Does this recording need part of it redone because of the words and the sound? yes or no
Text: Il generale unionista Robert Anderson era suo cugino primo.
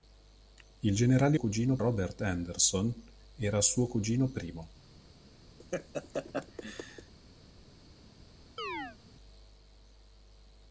yes